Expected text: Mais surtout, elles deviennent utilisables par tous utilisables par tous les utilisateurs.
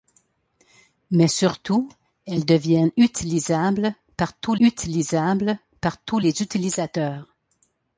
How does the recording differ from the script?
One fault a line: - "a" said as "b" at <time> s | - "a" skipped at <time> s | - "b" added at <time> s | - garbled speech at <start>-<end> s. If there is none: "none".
none